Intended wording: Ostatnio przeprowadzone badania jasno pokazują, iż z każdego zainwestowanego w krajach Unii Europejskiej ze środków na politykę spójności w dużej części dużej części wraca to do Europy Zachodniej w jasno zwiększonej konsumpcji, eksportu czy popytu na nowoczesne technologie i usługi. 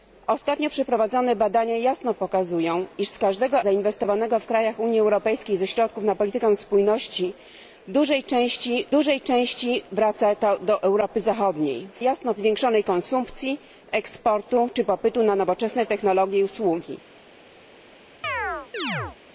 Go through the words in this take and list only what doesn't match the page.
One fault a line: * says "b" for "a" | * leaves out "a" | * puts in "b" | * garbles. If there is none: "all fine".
all fine